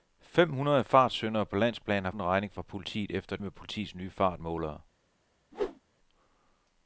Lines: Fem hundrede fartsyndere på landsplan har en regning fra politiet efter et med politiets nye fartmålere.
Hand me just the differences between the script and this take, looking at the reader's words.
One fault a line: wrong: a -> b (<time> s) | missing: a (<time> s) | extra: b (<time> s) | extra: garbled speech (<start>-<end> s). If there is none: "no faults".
no faults